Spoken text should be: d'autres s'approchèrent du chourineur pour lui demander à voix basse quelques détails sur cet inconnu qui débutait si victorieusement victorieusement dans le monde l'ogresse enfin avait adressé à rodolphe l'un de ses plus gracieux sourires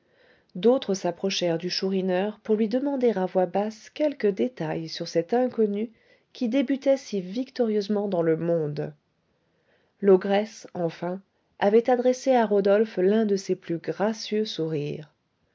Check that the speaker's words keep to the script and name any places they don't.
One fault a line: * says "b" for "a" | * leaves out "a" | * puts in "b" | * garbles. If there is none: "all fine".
* leaves out "victorieusement"